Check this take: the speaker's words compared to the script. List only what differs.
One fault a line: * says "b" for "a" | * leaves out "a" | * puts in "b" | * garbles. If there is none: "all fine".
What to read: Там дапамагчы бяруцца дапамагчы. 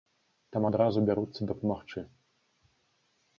* says "адразу" for "дапамагчы"